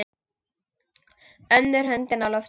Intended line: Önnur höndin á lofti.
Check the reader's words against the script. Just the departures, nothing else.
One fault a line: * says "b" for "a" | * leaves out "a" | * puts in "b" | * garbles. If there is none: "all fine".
all fine